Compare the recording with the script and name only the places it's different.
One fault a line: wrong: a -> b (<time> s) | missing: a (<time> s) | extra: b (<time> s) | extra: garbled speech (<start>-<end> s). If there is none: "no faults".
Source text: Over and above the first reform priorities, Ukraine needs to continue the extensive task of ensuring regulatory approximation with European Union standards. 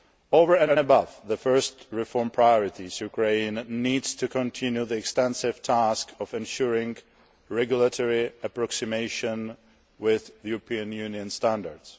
extra: and (0.6 s)